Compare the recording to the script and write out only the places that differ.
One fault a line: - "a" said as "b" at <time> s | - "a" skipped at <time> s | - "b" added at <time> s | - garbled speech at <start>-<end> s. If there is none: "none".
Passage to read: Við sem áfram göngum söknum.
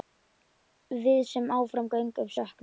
none